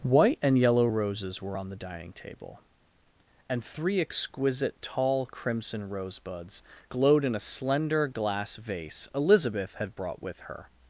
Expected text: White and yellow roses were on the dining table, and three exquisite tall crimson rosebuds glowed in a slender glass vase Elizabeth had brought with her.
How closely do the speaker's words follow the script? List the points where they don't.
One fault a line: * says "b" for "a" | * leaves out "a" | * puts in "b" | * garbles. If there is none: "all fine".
all fine